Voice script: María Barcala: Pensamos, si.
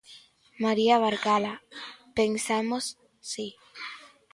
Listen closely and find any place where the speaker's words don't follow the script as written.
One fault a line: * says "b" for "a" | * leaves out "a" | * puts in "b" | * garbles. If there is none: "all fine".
all fine